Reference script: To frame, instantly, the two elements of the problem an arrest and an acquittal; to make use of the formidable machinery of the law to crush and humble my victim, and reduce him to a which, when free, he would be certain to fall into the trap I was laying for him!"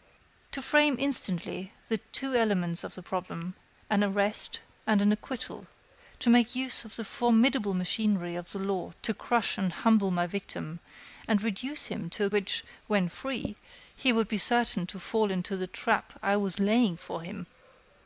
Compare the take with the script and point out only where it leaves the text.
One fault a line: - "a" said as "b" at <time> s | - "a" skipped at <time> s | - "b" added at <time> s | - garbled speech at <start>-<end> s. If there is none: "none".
none